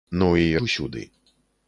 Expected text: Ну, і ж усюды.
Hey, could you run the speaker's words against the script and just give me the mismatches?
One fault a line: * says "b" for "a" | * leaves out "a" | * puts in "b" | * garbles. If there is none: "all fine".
all fine